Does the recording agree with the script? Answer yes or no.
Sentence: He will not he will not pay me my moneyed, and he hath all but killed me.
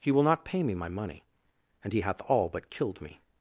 no